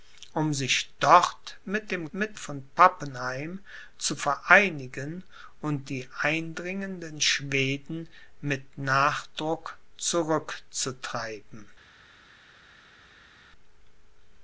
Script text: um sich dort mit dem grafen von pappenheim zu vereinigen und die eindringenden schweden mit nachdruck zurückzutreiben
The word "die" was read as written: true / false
true